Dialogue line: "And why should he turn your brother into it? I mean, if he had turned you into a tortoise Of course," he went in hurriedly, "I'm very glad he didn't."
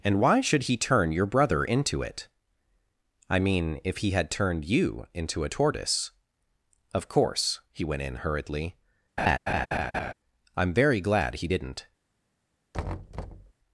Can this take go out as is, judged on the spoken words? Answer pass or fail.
pass